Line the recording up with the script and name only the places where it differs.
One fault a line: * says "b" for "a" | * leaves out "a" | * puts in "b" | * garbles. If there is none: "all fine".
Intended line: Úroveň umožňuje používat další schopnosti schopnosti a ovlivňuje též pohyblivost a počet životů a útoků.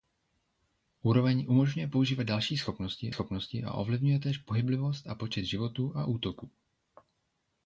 all fine